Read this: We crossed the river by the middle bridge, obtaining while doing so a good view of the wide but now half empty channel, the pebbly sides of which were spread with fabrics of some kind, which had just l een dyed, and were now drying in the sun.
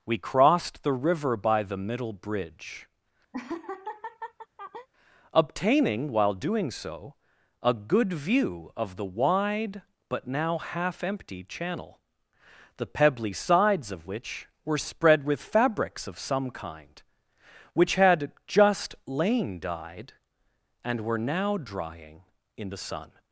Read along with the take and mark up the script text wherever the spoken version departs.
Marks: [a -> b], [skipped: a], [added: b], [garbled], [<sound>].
We crossed the river by the middle bridge, [laugh] obtaining while doing so a good view of the wide but now half empty channel, the pebbly sides of which were spread with fabrics of some kind, which had just [l een -> lain] dyed, and were now drying in the sun.